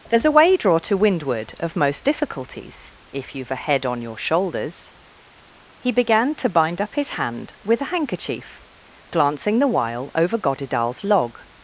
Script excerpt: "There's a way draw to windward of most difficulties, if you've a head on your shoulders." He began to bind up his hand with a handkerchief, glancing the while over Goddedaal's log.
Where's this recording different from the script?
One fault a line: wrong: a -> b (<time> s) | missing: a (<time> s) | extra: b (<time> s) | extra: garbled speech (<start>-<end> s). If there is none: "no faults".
no faults